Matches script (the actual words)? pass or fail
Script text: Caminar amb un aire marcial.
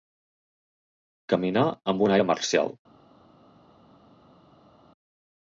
pass